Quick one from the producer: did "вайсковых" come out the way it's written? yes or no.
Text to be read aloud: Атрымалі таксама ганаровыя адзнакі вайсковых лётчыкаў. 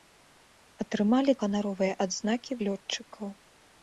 no